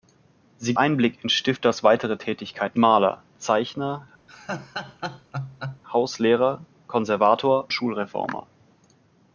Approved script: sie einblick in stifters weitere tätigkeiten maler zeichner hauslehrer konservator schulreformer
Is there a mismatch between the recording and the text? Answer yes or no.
no